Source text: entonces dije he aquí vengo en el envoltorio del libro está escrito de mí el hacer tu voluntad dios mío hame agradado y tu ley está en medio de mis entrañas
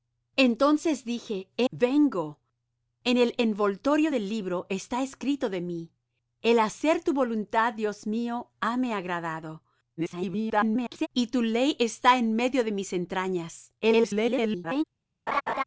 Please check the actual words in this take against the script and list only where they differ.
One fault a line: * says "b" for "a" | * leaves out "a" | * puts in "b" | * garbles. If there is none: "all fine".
* leaves out "aquí"
* garbles
* garbles